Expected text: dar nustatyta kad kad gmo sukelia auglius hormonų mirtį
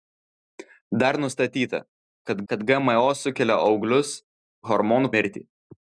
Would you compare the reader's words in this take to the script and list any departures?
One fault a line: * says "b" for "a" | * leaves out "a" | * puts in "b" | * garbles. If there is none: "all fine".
all fine